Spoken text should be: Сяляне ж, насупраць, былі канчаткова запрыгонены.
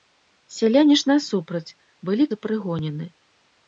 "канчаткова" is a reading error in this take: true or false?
true